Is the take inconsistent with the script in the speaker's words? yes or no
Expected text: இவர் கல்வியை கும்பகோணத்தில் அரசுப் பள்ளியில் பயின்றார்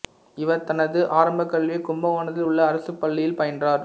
yes